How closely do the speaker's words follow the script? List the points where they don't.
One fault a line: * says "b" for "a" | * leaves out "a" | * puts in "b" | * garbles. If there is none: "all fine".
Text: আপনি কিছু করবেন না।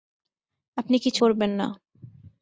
all fine